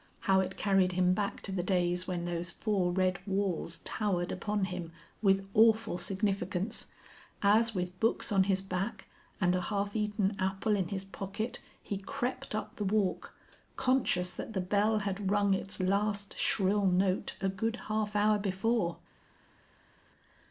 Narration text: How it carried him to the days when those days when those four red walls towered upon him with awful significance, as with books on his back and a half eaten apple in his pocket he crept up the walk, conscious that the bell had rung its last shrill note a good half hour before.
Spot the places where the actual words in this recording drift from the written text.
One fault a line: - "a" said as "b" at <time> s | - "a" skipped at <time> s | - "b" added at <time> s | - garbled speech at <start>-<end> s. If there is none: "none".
- "back" added at 1.1 s
- "days when those" skipped at 2.5 s